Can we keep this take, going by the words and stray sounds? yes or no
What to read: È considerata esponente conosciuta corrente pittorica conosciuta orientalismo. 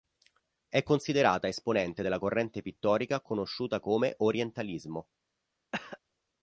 no